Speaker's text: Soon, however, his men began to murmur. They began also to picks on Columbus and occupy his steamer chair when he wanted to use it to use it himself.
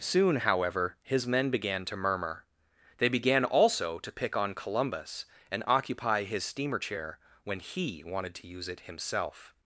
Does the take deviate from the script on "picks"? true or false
true